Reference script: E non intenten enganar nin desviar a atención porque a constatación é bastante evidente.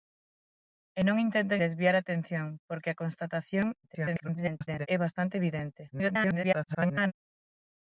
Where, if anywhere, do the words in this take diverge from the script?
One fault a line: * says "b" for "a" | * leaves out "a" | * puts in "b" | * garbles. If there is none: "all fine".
* leaves out "enganar nin"
* garbles
* garbles